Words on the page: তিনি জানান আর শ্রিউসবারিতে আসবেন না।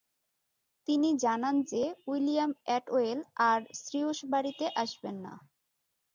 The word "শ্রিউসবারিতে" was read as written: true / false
true